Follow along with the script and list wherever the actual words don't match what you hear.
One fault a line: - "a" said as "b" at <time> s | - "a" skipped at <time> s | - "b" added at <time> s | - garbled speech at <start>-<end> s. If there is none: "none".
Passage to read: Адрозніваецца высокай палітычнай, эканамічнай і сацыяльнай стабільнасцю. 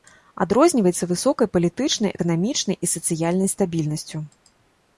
none